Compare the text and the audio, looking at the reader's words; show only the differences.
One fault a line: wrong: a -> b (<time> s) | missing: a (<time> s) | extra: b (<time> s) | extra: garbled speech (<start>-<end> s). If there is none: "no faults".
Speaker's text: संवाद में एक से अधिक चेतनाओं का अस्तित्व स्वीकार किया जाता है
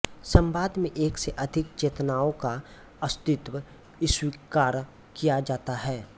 no faults